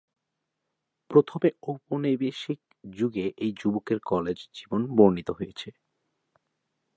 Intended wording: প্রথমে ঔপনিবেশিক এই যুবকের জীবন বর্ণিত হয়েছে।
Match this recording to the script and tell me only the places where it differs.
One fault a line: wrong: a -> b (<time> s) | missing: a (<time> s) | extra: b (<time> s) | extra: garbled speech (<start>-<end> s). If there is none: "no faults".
extra: যুগে (2.9 s)
extra: কলেজ (4.1 s)